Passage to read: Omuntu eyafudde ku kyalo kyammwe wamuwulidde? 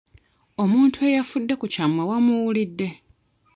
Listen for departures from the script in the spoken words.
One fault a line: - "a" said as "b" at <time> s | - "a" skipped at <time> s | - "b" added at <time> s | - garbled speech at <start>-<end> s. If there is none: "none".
- "kyalo" skipped at 1.7 s